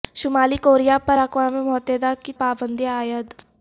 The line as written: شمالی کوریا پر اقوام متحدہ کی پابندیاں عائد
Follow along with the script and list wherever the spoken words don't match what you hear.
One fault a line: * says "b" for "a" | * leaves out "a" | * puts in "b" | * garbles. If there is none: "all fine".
all fine